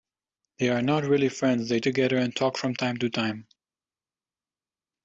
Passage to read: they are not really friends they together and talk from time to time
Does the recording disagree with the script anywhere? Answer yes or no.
no